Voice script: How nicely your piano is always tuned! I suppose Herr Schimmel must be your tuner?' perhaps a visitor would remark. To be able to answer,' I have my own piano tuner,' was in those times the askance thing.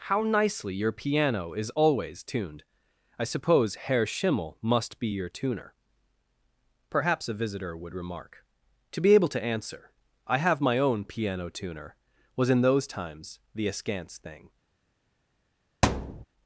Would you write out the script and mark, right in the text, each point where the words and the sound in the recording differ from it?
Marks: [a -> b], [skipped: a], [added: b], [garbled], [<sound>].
How nicely your piano is always tuned! I suppose Herr Schimmel must be your tuner?' perhaps a visitor would remark. To be able to answer,' I have my own piano tuner,' was in those times the askance thing. [thud]